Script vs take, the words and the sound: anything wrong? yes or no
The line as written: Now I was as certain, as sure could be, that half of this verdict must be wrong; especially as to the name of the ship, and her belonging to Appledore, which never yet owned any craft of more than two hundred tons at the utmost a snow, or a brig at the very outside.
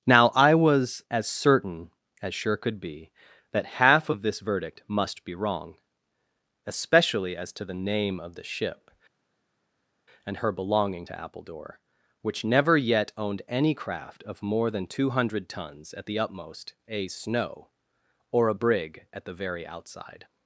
no